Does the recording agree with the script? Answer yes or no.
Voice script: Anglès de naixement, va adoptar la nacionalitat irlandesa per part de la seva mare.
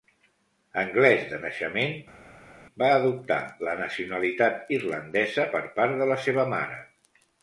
yes